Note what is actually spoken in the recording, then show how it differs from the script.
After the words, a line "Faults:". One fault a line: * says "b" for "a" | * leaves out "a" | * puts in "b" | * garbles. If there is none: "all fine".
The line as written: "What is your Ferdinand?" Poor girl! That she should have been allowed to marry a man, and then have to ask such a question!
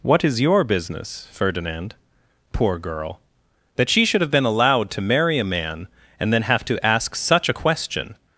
"What is your business, Ferdinand?" Poor girl! That she should have been allowed to marry a man, and then have to ask such a question!
Faults:
* puts in "business"